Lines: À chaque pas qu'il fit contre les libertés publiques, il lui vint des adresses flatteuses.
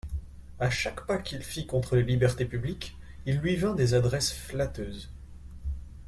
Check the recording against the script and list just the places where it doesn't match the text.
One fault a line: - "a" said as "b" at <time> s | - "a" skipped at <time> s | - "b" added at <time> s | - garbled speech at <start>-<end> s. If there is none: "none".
none